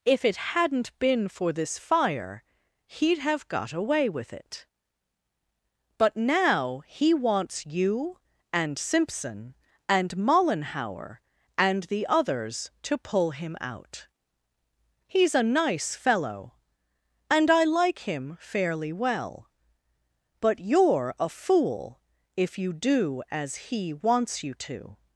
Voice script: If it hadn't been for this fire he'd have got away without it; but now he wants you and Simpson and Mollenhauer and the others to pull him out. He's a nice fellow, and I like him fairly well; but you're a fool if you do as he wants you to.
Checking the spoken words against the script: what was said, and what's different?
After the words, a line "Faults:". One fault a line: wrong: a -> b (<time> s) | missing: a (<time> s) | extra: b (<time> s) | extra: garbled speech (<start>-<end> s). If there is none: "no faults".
If it hadn't been for this fire he'd have got away with it; but now he wants you and Simpson and Mollenhauer and the others to pull him out. He's a nice fellow, and I like him fairly well; but you're a fool if you do as he wants you to.
Faults:
wrong: without -> with (4.1 s)